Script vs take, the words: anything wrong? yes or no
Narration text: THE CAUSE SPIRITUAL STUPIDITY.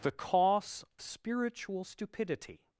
no